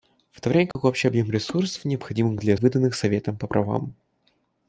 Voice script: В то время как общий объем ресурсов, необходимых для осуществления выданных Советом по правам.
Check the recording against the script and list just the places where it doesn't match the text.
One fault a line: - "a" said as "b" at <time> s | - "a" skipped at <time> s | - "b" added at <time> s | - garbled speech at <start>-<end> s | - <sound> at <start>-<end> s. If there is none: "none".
- dropout at 0.7-0.8 s
- "осуществления" skipped at 2.5 s